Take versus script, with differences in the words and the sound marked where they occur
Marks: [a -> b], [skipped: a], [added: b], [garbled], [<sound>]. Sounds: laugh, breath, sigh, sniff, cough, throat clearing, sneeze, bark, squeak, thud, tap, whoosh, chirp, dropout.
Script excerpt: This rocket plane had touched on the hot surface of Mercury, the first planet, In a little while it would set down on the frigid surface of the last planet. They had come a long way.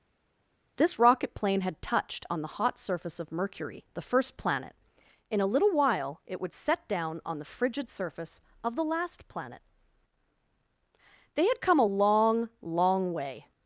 This rocket plane had touched on the hot surface of Mercury, the first planet, In a little while it would set down on the frigid surface of the last planet. They had come a long [added: long] way.